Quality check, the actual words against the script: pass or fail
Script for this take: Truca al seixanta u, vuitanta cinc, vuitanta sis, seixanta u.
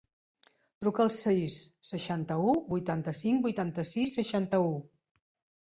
fail